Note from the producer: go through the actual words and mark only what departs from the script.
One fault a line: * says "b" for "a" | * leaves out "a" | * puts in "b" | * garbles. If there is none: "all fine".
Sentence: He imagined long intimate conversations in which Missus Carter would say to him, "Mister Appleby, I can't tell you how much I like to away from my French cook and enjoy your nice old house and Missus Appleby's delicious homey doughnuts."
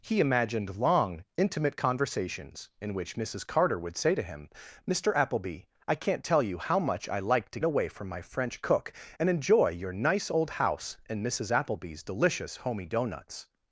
all fine